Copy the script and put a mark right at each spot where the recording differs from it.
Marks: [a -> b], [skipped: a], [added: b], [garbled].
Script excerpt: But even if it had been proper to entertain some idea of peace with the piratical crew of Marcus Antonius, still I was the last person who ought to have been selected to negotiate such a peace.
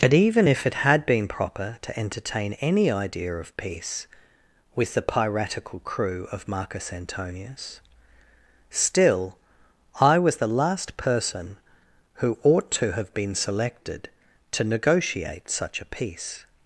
But even if it had been proper to entertain [some -> any] idea of peace with the piratical crew of Marcus Antonius, still I was the last person who ought to have been selected to negotiate such a peace.